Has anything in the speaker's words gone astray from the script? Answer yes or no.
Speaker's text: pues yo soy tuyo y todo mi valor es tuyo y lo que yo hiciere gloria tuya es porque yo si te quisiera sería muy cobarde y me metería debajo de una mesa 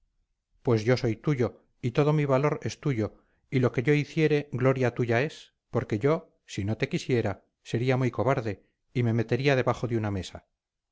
yes